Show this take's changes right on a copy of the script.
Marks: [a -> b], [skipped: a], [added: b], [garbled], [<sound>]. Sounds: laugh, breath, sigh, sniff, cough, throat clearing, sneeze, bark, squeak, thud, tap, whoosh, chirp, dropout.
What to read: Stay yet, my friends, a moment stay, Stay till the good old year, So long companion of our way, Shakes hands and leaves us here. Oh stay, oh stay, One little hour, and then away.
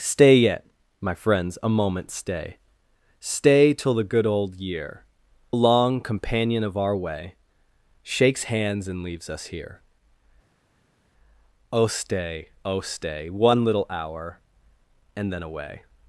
Stay yet, my friends, a moment stay, Stay till the good old year, [skipped: So] long companion of our way, Shakes hands and leaves us here. Oh stay, oh stay, One little hour, and then away.